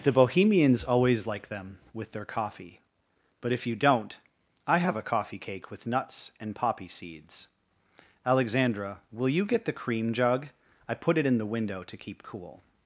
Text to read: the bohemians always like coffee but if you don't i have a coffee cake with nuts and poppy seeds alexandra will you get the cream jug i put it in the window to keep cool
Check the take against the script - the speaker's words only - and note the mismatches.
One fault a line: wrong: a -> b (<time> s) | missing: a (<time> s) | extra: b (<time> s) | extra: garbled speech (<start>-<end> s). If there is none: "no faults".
extra: them with their (1.5 s)